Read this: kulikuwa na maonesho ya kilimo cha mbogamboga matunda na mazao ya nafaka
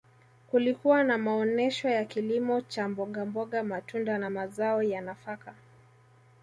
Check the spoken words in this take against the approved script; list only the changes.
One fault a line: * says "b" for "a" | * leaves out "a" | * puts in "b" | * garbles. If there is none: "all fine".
all fine